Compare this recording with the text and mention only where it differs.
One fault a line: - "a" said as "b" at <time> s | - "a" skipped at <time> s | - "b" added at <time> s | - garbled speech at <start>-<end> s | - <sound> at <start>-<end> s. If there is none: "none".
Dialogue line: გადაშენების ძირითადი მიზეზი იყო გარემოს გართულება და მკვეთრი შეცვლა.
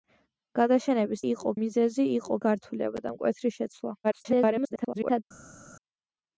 - "ძირითადი" said as "იყო" at 1.3 s
- "გარემოს" skipped at 2.4 s
- garbled speech at 4.0-5.2 s